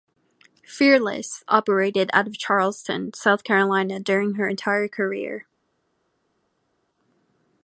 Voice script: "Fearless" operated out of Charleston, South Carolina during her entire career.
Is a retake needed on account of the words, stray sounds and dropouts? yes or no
no